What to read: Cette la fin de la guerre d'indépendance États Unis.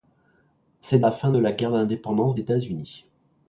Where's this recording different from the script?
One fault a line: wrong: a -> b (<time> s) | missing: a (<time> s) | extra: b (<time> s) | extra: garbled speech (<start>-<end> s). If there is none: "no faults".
no faults